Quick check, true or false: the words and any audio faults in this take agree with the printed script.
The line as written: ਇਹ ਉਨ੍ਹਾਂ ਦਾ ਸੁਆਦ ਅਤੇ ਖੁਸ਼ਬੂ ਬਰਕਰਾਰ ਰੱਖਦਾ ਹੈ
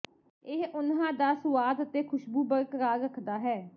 true